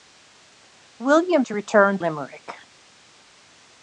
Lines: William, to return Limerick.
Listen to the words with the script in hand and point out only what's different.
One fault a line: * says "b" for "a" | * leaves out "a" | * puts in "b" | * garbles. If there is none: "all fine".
all fine